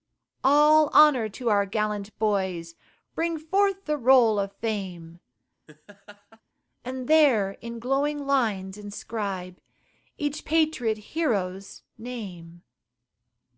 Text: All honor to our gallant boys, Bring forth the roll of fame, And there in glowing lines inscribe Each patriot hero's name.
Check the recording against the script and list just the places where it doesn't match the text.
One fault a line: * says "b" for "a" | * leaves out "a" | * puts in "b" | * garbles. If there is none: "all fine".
all fine